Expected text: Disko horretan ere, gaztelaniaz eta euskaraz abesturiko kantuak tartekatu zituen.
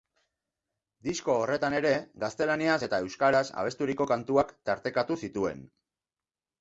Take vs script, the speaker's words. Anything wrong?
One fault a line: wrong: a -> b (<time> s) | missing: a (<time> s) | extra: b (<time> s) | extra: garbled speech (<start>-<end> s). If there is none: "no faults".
no faults